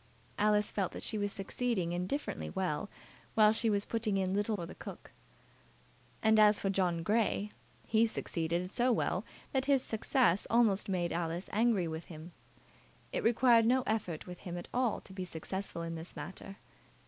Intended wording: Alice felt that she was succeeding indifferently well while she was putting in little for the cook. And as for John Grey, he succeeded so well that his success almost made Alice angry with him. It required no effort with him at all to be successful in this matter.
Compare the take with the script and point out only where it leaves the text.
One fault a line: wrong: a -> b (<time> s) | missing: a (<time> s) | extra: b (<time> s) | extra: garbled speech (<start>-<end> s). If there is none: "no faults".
no faults